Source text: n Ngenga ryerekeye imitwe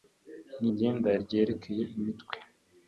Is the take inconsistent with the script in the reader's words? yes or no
no